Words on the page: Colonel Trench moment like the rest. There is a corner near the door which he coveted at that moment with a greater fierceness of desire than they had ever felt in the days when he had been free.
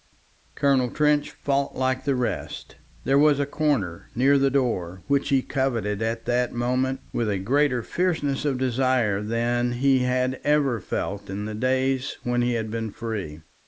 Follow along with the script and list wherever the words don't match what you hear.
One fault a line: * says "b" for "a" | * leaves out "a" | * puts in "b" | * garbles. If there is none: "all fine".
* says "fought" for "moment"
* says "was" for "is"
* says "he" for "they"